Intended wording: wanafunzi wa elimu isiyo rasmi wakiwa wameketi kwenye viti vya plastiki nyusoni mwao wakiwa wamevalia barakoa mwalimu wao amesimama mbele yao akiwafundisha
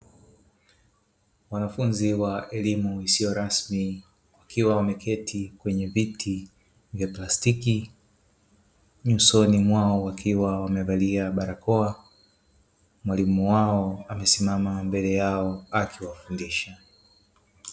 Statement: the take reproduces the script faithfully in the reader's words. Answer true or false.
true